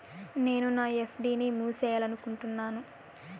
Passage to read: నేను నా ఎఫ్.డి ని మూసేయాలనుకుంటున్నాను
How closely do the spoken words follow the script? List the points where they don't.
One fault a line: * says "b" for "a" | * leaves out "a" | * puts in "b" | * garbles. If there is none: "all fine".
all fine